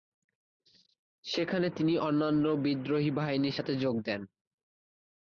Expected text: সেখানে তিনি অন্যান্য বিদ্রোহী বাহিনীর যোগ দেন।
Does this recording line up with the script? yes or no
no